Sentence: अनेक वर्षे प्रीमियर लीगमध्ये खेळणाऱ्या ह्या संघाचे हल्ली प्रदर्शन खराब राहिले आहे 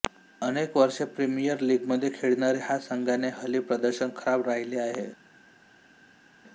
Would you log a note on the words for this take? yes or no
no